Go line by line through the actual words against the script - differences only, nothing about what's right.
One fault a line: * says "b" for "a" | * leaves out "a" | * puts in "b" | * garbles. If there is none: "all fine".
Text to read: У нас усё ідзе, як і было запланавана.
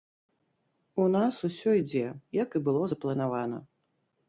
all fine